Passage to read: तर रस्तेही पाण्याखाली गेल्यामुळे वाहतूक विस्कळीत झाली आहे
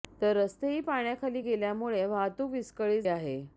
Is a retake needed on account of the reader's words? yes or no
yes